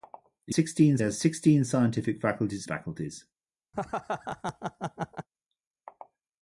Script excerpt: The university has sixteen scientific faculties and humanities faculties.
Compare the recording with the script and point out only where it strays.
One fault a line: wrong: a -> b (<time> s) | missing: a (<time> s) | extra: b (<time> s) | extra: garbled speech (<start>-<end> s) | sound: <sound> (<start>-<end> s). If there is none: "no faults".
wrong: university -> sixteen (0.5 s)
missing: and humanities (2.7 s)
sound: laugh (3.7-5.3 s)